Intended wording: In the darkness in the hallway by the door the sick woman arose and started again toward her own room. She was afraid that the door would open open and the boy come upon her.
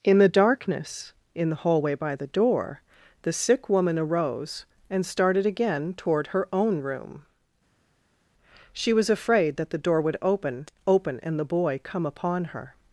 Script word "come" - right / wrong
right